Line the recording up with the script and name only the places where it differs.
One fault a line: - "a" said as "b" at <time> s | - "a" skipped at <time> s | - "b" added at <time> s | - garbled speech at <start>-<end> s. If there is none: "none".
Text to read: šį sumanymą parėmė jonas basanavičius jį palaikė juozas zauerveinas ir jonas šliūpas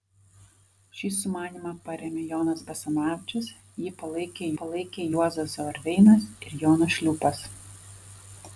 - "palaikė" added at 4.6 s